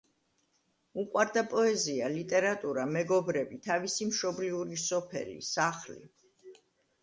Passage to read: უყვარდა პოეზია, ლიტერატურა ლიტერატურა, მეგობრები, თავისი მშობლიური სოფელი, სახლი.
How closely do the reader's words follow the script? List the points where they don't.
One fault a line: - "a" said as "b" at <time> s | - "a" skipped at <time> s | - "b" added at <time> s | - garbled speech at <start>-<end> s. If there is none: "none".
- "ლიტერატურა" skipped at 2.9 s